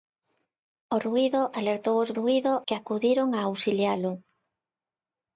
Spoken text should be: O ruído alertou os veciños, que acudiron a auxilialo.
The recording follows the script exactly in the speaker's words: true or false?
false